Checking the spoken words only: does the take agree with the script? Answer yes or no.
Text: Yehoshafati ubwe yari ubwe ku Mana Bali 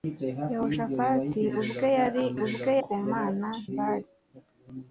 yes